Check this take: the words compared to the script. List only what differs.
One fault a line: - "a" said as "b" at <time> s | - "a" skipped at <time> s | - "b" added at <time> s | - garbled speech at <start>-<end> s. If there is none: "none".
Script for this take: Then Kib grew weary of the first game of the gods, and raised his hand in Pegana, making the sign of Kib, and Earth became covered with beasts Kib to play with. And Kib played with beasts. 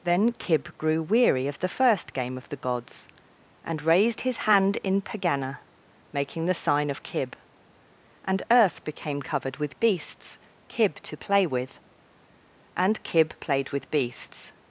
none